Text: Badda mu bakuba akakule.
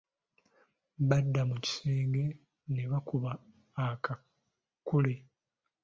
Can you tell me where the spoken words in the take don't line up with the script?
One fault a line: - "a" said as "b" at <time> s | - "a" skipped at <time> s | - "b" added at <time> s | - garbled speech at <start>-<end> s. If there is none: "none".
- "kisenge ne" added at 1.6 s